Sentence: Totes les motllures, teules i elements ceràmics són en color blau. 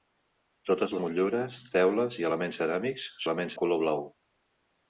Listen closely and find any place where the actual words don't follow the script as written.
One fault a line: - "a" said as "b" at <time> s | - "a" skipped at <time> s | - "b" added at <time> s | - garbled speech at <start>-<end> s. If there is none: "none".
- "les" skipped at 0.9 s
- "són" said as "elements" at 3.2 s